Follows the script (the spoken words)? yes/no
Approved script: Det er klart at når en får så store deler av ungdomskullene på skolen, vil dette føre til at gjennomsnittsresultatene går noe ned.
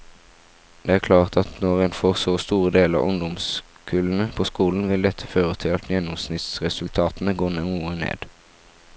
yes